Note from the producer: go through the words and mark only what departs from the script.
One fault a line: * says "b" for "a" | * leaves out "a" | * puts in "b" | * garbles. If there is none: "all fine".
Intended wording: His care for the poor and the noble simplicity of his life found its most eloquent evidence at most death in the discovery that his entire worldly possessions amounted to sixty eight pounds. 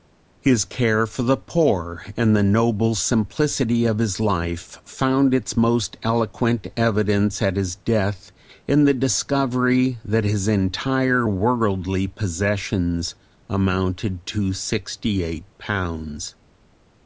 * says "his" for "most"